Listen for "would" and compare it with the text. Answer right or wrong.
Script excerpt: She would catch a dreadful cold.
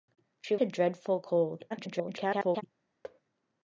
wrong